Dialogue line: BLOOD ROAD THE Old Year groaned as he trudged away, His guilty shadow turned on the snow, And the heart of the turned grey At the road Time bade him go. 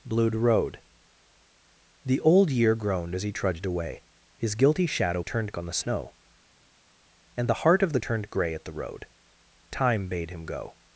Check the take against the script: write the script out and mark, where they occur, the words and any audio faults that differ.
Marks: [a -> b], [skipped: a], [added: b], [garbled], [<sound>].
BLOOD ROAD THE Old Year groaned as he trudged away, His guilty shadow turned on the snow, And the heart of the turned grey At the road Time bade him go.